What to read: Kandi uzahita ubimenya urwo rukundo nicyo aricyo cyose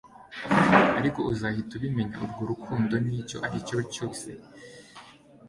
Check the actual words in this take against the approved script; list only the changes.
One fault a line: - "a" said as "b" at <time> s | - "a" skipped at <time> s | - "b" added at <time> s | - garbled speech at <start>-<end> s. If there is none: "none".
- "Kandi" said as "Ariko" at 1.0 s